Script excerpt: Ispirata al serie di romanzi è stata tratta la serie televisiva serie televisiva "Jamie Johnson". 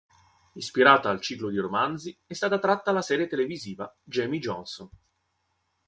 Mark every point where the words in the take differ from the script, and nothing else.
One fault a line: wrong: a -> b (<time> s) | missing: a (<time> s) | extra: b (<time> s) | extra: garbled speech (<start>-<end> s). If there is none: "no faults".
wrong: serie -> ciclo (1.2 s)
missing: serie televisiva (3.9 s)